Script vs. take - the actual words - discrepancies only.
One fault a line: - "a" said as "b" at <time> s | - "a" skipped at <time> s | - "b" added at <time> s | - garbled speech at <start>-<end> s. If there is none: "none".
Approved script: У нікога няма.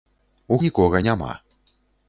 none